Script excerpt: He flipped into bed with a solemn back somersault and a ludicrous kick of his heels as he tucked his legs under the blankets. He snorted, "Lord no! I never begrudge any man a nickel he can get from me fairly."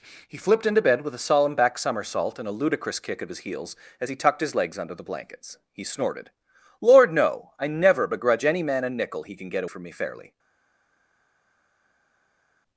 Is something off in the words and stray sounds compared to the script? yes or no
no